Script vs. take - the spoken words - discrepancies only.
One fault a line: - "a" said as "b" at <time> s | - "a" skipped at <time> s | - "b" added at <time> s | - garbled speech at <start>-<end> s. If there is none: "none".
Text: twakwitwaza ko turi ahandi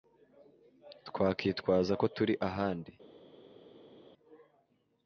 none